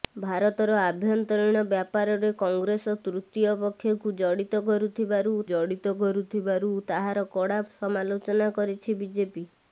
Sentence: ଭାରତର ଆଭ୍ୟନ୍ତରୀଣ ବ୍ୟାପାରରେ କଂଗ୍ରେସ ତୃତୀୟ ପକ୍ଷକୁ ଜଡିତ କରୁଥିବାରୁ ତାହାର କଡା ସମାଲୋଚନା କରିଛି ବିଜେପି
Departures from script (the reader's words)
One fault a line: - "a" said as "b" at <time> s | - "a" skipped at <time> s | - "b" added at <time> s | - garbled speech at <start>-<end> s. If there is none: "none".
- "ଜଡିତ କରୁଥିବାରୁ" added at 5.5 s